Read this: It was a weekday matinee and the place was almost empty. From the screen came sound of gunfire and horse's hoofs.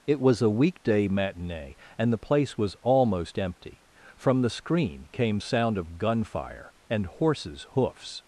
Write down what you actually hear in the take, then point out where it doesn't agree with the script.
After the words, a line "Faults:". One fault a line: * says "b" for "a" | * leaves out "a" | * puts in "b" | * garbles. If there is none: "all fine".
It was a weekday matinee and the place was almost empty. From the screen came sound of gunfire and horse's hoofs.
Faults:
all fine